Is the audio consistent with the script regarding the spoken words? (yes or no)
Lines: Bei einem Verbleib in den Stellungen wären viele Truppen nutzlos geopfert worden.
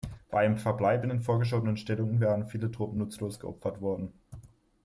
no